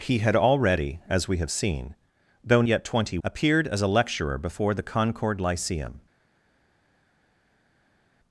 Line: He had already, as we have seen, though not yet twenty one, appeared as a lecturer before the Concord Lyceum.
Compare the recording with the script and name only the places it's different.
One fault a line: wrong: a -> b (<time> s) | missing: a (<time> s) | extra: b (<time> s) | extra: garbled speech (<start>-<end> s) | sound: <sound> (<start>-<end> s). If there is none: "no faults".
missing: not (2.6 s)
missing: one (3.2 s)